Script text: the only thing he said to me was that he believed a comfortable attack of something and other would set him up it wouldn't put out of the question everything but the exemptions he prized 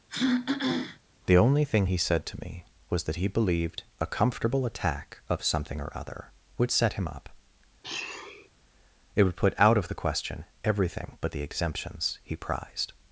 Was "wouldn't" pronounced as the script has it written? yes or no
no